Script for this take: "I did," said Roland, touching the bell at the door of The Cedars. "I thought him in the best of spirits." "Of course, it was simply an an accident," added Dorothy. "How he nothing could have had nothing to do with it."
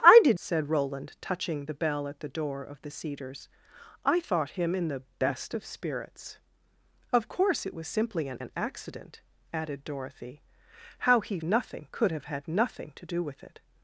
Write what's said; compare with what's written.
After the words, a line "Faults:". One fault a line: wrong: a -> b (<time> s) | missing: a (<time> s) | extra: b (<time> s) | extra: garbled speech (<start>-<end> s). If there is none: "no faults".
"I did," said Roland, touching the bell at the door of The Cedars. "I thought him in the best of spirits." "Of course, it was simply an an accident," added Dorothy. "How he nothing could have had nothing to do with it."
Faults:
no faults